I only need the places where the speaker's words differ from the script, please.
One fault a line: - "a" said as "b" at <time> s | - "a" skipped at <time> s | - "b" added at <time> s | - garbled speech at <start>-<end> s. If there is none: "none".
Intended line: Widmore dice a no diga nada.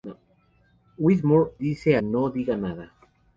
none